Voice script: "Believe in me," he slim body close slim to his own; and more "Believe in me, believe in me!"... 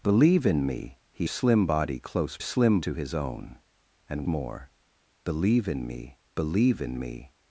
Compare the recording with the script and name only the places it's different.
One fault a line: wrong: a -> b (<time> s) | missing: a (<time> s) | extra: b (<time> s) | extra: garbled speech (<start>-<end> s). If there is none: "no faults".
no faults